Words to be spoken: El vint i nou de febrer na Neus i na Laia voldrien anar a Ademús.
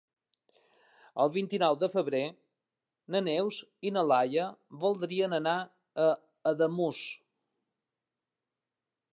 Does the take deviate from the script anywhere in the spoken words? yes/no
no